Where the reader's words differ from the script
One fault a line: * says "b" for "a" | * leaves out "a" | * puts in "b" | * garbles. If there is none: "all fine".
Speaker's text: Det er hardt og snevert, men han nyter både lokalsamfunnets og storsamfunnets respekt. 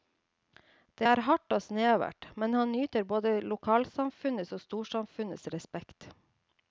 all fine